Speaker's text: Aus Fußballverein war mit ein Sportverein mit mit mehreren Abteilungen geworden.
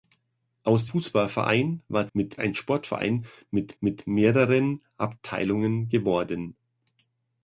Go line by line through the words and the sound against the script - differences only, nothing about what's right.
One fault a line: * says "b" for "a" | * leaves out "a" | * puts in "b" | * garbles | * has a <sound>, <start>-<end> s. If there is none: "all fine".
all fine